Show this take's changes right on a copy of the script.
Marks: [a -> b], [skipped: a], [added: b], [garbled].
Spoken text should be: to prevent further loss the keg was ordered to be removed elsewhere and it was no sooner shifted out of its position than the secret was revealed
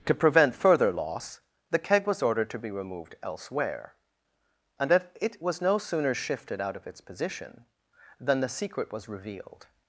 to prevent further loss the keg was ordered to be removed elsewhere and [added: that] it was no sooner shifted out of its position than the secret was revealed